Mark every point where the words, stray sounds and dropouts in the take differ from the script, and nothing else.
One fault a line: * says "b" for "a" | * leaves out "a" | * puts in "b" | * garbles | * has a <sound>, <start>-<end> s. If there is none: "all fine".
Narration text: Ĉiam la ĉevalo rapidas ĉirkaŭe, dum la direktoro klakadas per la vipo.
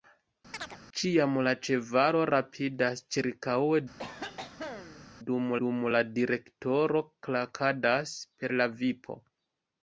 * has a chirp, 0.5-0.8 s
* has a cough, 4.0-5.1 s
* puts in "dum"